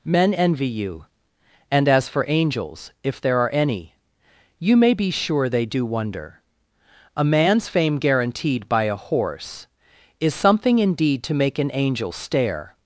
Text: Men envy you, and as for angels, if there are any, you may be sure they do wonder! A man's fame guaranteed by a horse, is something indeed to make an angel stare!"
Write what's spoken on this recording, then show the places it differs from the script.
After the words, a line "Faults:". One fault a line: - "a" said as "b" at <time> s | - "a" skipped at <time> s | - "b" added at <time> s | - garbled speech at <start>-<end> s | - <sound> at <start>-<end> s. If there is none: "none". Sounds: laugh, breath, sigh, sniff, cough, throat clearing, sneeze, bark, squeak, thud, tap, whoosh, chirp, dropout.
Men envy you, and as for angels, if there are any, you may be sure they do wonder! A man's fame guaranteed by a horse, is something indeed to make an angel stare!"
Faults:
none